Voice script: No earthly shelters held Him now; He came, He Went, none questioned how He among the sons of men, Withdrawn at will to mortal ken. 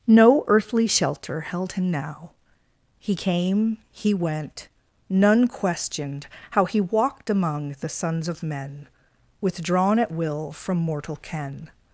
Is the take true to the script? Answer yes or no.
no